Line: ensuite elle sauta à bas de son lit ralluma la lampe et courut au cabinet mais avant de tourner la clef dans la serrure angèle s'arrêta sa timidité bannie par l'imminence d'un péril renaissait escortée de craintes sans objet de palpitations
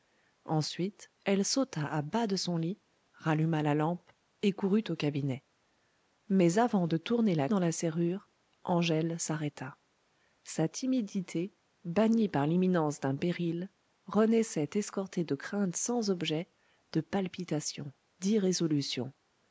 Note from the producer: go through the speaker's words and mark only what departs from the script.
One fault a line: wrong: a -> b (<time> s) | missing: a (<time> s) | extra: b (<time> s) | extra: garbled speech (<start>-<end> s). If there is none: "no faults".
missing: clef (7.5 s)